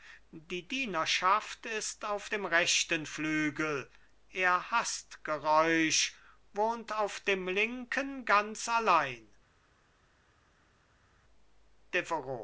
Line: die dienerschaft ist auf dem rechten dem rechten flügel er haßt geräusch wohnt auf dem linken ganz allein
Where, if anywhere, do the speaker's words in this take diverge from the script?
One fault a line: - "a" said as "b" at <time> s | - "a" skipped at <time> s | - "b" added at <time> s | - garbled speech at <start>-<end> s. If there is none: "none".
- "dem rechten" skipped at 3.0 s